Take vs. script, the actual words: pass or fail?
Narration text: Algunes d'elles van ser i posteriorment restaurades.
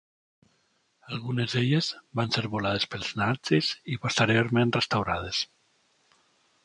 fail